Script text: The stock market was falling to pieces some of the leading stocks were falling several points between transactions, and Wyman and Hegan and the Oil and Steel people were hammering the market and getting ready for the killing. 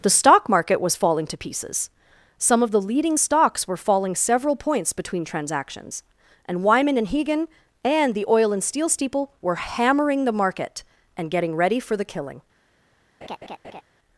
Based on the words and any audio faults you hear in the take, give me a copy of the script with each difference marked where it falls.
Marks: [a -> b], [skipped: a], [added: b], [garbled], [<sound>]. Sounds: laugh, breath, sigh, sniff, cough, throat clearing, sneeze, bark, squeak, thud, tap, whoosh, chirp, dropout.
The stock market was falling to pieces some of the leading stocks were falling several points between transactions, and Wyman and Hegan and the Oil and Steel [people -> steeple] were hammering the market and getting ready for the killing. [laugh]